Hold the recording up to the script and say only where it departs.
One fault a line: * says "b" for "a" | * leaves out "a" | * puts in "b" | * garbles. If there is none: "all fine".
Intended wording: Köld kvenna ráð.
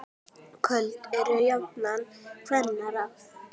* puts in "eru jafnan"